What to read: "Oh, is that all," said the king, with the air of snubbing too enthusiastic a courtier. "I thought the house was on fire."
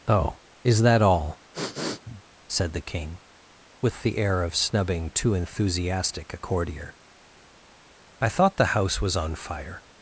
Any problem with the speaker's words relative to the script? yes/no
no